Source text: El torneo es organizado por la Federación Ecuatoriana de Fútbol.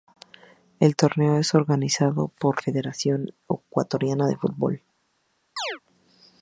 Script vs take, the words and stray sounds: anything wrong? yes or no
yes